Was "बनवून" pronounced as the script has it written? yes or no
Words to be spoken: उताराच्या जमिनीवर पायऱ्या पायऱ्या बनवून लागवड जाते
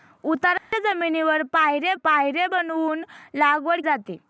yes